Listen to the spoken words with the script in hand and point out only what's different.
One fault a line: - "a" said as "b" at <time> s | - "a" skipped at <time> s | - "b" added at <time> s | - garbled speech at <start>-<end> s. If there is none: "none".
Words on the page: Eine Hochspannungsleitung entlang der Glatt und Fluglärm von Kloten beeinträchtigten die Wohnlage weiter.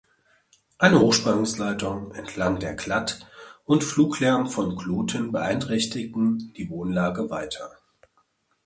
none